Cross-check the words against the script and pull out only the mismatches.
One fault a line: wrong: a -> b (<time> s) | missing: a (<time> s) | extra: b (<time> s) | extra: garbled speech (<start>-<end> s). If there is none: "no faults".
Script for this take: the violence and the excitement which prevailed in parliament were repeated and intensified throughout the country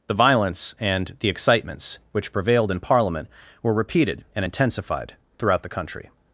wrong: excitement -> excitements (1.3 s)